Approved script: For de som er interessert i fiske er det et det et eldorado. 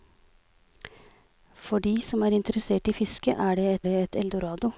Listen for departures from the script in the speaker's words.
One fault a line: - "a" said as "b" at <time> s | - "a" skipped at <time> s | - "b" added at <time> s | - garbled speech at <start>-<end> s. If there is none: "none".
none